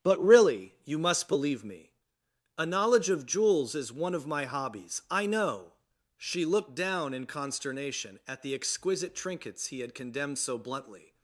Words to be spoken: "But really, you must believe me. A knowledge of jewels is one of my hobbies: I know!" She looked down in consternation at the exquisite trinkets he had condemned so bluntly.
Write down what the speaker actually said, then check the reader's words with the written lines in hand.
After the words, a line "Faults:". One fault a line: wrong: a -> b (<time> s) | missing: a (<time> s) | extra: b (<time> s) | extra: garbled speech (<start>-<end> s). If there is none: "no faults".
"But really, you must believe me. A knowledge of jewels is one of my hobbies: I know!" She looked down in consternation at the exquisite trinkets he had condemned so bluntly.
Faults:
no faults